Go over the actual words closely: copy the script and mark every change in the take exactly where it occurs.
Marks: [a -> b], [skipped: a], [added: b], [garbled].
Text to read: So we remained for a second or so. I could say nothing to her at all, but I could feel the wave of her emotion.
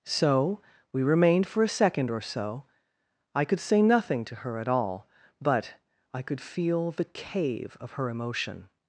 So we remained for a second or so. I could say nothing to her at all, but I could feel the [wave -> cave] of her emotion.